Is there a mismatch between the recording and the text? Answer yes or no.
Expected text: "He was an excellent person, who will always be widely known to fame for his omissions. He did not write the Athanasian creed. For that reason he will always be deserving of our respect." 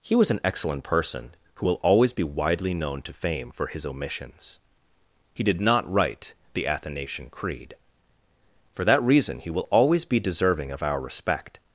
no